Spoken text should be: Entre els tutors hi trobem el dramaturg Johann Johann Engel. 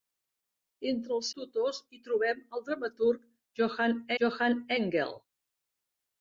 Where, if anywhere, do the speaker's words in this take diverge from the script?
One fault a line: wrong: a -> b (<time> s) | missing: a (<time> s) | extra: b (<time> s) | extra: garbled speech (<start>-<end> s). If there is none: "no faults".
no faults